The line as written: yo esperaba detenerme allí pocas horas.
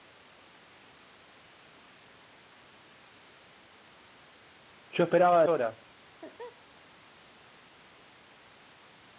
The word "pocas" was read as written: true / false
false